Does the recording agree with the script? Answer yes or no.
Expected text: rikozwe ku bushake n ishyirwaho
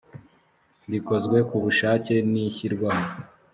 yes